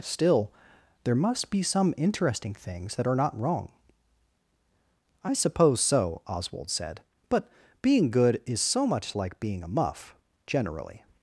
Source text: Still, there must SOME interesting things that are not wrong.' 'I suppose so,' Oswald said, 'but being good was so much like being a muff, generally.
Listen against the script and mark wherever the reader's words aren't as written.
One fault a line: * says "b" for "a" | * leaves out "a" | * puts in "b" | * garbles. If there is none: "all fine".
* puts in "be"
* says "is" for "was"